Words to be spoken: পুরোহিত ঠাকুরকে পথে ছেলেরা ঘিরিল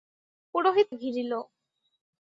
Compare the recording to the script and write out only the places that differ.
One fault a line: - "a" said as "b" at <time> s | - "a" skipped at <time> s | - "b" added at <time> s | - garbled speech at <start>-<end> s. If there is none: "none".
- "ঠাকুরকে পথে ছেলেরা" skipped at 0.9 s